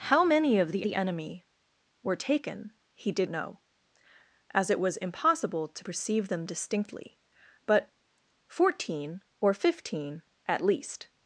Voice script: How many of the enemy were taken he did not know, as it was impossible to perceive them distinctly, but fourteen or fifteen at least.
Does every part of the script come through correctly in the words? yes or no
no